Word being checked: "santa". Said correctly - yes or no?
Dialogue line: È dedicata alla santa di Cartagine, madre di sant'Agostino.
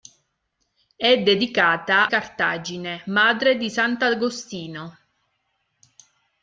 no